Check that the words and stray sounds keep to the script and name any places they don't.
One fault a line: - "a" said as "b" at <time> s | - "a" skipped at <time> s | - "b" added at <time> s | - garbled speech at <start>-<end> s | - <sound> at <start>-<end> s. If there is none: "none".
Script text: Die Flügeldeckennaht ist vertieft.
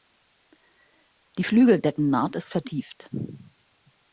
none